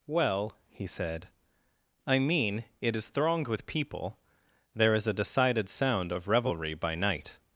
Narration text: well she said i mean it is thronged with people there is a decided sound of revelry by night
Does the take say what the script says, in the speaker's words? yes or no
no